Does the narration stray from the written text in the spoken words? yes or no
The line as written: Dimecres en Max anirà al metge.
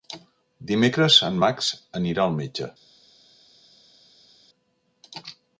no